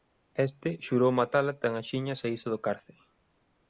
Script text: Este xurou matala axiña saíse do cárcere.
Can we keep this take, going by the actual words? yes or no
no